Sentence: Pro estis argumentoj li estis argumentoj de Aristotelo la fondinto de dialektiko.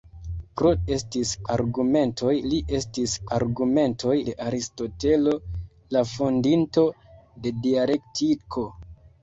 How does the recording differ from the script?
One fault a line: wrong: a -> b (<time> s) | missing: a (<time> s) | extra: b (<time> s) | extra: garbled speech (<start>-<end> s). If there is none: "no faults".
no faults